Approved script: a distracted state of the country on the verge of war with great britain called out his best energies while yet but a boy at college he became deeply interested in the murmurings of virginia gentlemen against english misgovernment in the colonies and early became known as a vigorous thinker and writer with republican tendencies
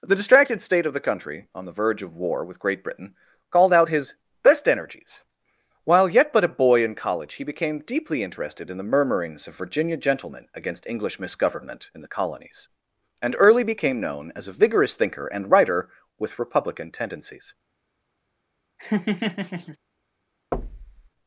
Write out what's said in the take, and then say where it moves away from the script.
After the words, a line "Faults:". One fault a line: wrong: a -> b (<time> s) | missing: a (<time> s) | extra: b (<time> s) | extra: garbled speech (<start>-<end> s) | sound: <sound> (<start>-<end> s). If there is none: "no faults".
the distracted state of the country on the verge of war with great britain called out his best energies while yet but a boy in college he became deeply interested in the murmurings of virginia gentlemen against english misgovernment in the colonies and early became known as a vigorous thinker and writer with republican tendencies
Faults:
wrong: a -> the (0.0 s)
wrong: at -> in (6.8 s)
sound: laugh (18.8-19.8 s)
sound: thud (20.5-21.1 s)